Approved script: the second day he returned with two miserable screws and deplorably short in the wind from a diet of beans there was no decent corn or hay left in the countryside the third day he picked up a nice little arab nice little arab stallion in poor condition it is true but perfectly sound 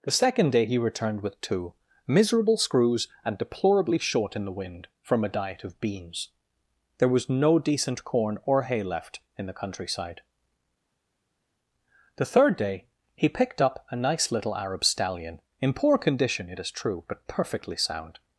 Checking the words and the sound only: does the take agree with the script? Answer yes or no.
no